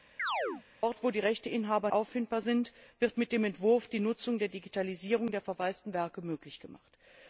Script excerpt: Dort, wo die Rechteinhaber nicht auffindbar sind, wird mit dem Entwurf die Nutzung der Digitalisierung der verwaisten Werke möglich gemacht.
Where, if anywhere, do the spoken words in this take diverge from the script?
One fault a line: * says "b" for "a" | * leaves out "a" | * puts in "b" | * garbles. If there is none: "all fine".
* leaves out "nicht"